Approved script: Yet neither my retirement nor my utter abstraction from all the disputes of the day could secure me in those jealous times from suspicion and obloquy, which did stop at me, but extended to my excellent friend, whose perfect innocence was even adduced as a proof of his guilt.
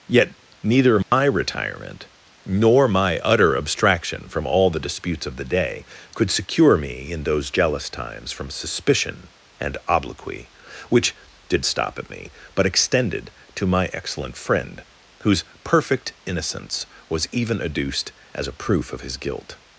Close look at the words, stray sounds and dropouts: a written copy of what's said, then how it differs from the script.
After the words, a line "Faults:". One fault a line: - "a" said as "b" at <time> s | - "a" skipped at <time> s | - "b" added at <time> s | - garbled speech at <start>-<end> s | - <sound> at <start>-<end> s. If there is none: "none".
Yet neither my retirement nor my utter abstraction from all the disputes of the day could secure me in those jealous times from suspicion and obloquy, which did stop at me, but extended to my excellent friend, whose perfect innocence was even adduced as a proof of his guilt.
Faults:
- dropout at 1.0-1.1 s